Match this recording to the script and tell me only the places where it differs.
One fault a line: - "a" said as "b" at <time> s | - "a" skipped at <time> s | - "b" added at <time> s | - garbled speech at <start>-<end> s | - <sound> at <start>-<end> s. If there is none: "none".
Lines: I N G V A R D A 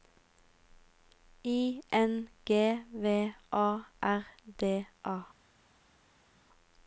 none